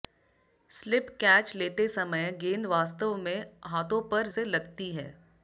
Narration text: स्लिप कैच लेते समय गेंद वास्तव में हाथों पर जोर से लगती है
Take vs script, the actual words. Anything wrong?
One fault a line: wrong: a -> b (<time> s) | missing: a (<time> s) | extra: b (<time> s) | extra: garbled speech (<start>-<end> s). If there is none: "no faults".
missing: जोर (4.3 s)